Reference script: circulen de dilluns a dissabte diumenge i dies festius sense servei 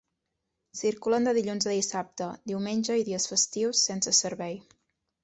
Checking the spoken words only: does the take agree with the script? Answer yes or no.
yes